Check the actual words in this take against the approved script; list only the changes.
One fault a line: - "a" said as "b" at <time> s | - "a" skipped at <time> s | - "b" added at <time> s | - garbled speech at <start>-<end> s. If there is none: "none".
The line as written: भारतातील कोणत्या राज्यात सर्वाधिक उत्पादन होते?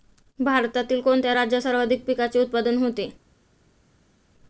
- "पिकाचे" added at 2.1 s